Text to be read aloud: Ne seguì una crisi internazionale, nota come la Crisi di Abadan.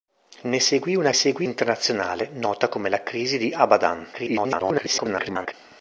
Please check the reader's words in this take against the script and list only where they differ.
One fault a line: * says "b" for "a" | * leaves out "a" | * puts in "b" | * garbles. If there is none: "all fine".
* says "seguì" for "crisi"
* garbles